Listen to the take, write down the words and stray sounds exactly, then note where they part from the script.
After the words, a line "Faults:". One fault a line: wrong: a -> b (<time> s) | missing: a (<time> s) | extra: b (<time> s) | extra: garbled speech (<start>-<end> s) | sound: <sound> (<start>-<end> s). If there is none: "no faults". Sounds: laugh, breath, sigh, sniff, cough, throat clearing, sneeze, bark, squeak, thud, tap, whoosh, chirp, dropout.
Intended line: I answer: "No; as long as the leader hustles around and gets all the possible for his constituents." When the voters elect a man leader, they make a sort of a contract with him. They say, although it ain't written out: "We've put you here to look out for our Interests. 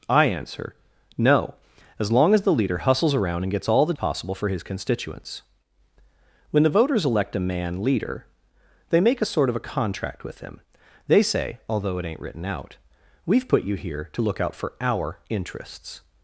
I answer: "No; as long as the leader hustles around and gets all the possible for his constituents." When the voters elect a man leader, they make a sort of a contract with him. They say, although it ain't written out: "We've put you here to look out for our Interests.
Faults:
no faults